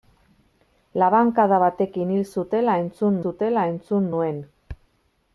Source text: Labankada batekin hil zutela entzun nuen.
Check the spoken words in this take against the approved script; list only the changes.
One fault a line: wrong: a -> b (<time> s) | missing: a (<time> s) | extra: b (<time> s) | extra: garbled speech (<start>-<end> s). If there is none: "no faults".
extra: zutela entzun (3.2 s)